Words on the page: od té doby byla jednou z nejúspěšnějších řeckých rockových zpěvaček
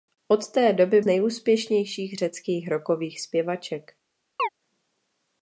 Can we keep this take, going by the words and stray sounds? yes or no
no